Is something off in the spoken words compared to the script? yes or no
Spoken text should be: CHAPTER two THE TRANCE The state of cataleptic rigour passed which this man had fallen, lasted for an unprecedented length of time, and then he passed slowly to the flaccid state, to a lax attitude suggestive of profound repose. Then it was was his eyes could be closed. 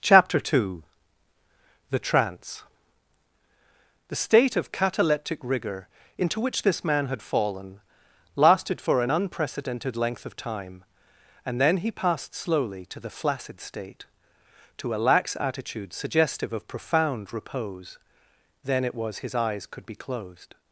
yes